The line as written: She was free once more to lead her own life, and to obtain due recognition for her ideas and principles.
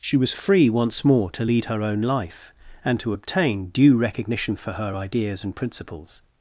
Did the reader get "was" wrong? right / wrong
right